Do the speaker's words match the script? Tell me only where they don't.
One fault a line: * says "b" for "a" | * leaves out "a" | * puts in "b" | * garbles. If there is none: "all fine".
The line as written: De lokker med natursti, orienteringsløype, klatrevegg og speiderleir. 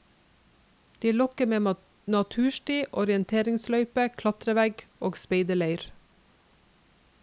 all fine